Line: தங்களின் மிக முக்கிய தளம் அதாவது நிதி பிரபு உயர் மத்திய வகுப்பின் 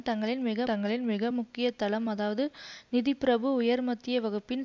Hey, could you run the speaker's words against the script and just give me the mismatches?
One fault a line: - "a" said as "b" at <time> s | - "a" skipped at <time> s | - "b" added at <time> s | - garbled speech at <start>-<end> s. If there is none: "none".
- "தங்களின் மிக" added at 0.6 s